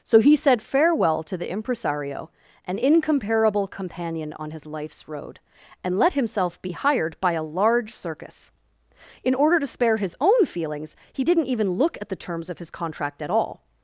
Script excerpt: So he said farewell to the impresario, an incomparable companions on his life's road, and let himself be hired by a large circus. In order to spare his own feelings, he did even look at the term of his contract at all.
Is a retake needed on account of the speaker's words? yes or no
yes